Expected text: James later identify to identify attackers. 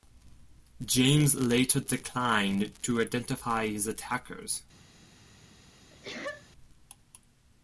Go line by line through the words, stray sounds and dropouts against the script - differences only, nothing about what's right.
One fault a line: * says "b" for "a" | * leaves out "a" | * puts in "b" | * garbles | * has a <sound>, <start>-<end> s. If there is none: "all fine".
* says "declined" for "identify"
* puts in "his"
* has a sneeze, 5.9-6.5 s